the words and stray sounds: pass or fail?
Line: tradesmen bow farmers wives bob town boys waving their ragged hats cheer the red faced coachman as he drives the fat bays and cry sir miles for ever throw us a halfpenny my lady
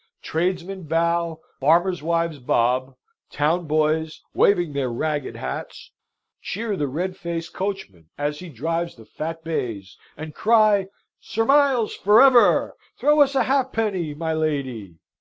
pass